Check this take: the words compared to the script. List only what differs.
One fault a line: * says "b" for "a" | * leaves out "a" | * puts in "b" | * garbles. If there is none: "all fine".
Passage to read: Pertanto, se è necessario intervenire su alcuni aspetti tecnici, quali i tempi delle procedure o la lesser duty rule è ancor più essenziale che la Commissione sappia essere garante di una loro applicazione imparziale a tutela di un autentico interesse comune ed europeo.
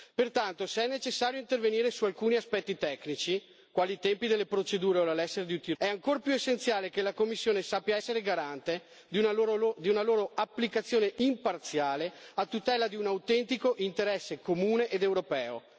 * leaves out "rule"